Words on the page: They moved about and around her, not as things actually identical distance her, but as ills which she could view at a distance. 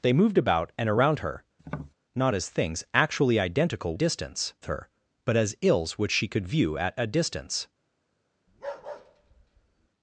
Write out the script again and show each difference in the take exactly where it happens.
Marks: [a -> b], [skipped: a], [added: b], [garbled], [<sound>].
They moved about and around her, [tap] not as things actually identical distance her, but as ills which she could view at a distance. [bark]